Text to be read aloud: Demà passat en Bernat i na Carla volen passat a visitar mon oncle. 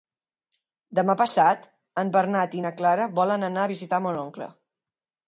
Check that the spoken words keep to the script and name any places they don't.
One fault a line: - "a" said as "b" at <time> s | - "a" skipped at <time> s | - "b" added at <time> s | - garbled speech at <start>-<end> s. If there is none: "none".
- "passat" said as "anar" at 3.5 s